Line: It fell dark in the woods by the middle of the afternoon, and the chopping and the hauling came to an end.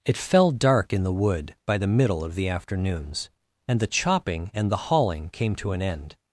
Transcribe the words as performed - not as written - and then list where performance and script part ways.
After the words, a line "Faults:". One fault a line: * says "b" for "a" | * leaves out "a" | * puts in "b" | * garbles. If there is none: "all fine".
It fell dark in the wood by the middle of the afternoons, and the chopping and the hauling came to an end.
Faults:
* says "wood" for "woods"
* says "afternoons" for "afternoon"